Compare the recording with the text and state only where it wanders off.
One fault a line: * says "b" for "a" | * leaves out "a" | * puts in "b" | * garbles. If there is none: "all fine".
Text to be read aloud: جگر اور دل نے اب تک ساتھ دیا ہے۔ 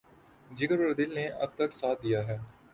all fine